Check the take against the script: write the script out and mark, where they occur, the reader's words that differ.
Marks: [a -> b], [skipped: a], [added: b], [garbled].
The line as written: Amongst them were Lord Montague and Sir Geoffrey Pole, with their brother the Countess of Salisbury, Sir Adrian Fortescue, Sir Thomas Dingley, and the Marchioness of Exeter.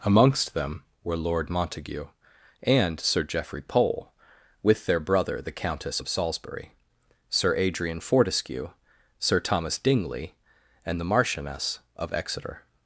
Amongst them were Lord Montague and Sir Geoffrey Pole, with their brother the Countess of Salisbury, Sir Adrian Fortescue, Sir Thomas Dingley, and the Marchioness of Exeter.